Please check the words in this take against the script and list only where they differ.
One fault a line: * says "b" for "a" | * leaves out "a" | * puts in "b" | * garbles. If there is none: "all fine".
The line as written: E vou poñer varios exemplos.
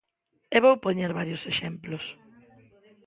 all fine